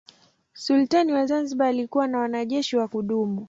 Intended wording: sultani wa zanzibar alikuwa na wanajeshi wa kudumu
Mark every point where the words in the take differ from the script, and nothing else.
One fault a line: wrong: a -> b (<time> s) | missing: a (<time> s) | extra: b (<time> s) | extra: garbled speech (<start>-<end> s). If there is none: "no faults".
no faults